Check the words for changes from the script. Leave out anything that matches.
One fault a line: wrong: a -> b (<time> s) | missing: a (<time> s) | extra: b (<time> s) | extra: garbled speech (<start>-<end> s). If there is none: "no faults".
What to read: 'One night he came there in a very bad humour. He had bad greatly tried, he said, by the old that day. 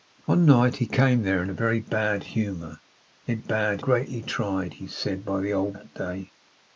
no faults